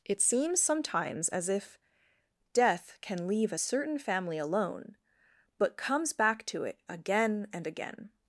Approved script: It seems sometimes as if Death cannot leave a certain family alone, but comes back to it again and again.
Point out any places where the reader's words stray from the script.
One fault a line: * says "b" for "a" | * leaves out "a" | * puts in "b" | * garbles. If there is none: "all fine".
* says "can" for "cannot"